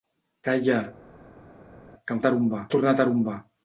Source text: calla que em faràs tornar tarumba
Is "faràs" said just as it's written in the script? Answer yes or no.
no